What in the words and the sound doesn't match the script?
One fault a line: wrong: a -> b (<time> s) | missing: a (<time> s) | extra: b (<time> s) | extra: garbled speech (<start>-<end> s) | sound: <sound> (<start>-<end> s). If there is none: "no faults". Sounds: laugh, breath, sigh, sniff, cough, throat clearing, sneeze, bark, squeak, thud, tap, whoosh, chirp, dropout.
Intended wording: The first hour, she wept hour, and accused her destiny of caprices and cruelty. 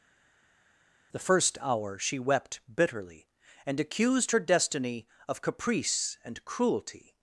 wrong: hour -> bitterly (2.7 s)
wrong: caprices -> caprice (5.4 s)